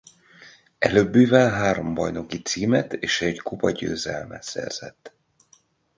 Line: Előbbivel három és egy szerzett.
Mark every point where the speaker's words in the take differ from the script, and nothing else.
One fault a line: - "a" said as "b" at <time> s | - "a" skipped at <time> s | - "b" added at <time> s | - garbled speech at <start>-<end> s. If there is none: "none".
- "bajnoki címet" added at 1.9 s
- "kupagyőzelmet" added at 3.4 s